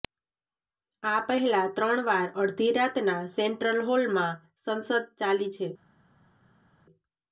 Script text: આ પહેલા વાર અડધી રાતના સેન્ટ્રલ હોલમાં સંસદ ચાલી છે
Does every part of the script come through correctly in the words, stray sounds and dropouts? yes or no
no